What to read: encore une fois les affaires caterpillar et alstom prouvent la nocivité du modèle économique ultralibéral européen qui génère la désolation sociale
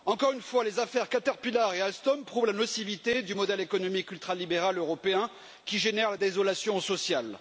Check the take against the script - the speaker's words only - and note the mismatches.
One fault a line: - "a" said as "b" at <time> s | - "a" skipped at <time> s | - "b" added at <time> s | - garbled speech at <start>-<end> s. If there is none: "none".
none